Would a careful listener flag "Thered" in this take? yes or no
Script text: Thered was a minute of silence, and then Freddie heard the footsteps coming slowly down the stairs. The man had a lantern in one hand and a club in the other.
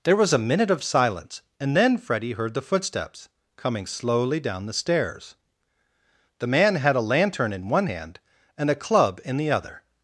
yes